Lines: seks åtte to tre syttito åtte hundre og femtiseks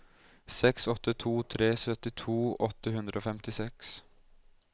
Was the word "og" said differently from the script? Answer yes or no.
no